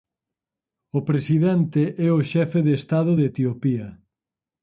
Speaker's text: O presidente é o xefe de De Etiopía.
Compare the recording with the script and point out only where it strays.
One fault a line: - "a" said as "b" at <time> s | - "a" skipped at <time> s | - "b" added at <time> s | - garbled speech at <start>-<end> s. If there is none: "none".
- "Estado" added at 2.8 s